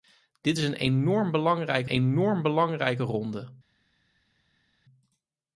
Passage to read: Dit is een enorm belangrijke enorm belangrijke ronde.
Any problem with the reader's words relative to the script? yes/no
no